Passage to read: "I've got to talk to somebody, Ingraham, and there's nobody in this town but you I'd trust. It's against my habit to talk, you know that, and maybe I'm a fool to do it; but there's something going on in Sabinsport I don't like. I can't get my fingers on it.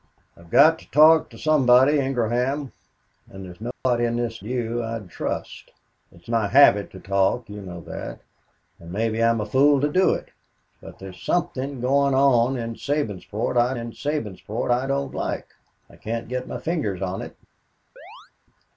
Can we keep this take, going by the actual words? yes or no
no